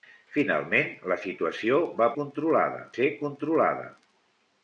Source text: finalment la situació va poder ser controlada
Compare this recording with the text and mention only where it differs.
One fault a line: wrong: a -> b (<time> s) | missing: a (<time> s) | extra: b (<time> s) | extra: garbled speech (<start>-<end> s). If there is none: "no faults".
wrong: poder -> controlada (2.2 s)